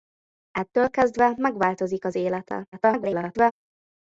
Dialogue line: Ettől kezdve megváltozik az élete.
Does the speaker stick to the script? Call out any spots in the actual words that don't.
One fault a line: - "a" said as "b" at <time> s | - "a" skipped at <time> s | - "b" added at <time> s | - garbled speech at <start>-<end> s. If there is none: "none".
- garbled speech at 2.7-3.5 s